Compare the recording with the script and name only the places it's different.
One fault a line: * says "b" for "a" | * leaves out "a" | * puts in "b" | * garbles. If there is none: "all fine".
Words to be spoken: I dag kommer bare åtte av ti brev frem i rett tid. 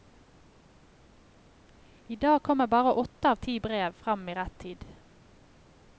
all fine